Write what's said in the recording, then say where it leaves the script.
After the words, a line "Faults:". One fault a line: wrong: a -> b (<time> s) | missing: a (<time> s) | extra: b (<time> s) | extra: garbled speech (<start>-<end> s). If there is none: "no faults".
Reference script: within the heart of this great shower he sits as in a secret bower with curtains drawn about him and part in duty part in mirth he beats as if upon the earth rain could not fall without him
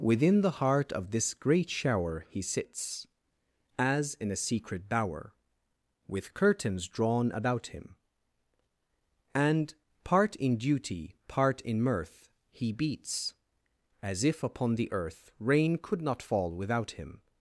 within the heart of this great shower he sits as in a secret bower with curtains drawn about him and part in duty part in mirth he beats as if upon the earth rain could not fall without him
Faults:
no faults